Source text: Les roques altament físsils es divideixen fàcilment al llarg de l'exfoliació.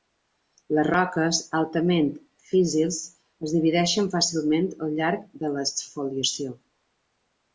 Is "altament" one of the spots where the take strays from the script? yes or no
no